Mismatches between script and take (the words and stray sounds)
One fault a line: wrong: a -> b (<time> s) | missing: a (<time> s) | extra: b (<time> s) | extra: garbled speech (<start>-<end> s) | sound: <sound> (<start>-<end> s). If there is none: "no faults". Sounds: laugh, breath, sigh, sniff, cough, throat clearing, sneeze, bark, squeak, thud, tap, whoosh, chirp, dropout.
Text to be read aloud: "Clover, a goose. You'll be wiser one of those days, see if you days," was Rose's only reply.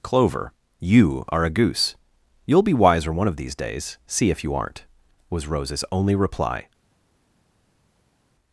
extra: you are (0.8 s)
wrong: those -> these (3.3 s)
wrong: days -> aren't (4.5 s)